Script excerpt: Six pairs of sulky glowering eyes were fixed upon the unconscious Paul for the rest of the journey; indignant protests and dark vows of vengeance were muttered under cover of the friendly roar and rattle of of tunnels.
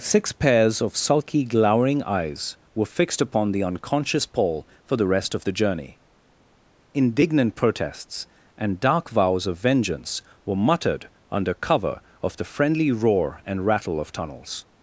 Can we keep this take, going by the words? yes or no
no